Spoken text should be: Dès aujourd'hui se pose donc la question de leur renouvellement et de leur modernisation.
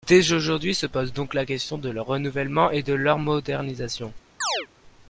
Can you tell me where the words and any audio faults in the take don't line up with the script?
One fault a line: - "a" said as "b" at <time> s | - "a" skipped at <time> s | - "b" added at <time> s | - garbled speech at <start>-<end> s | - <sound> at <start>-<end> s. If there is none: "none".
- chirp at 4.4-4.7 s